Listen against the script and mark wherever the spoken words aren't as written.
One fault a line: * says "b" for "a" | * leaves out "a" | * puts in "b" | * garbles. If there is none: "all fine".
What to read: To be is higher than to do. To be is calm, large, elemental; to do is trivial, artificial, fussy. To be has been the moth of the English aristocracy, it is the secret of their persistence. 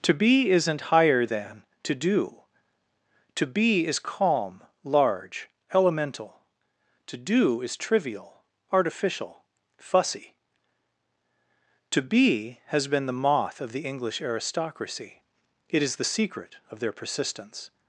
* says "isn't" for "is"